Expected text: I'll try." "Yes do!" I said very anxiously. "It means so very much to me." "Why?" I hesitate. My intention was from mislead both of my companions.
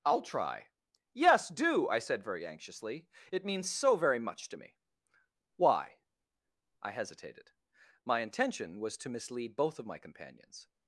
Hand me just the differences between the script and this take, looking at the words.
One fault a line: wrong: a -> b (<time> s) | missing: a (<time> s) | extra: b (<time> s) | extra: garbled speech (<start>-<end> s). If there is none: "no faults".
wrong: hesitate -> hesitated (6.9 s)
wrong: from -> to (9.0 s)